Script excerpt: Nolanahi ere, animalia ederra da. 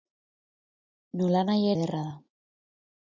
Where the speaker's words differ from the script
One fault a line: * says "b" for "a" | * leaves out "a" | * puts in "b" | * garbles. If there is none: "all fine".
* leaves out "ere animalia"